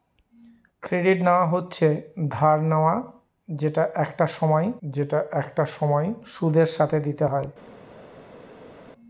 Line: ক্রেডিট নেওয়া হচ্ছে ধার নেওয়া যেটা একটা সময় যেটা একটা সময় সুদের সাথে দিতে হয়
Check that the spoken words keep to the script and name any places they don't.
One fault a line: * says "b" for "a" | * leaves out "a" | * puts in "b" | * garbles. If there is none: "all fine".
all fine